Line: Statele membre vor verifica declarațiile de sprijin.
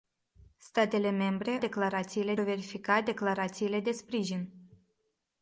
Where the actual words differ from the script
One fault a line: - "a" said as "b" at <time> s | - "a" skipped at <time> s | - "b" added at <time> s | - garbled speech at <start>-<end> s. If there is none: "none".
- "vor" said as "declarațiile" at 1.6 s